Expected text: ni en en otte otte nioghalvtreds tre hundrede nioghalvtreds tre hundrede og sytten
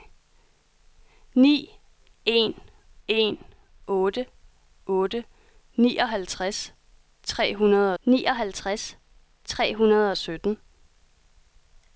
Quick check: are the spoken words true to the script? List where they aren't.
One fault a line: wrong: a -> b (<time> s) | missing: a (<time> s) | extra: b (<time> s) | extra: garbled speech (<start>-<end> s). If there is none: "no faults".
no faults